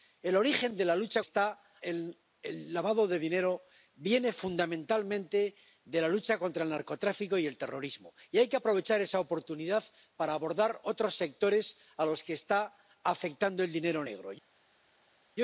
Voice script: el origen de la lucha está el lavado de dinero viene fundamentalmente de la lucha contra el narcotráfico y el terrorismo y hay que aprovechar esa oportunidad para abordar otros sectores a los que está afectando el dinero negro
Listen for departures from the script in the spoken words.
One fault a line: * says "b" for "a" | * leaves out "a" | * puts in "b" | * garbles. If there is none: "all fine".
all fine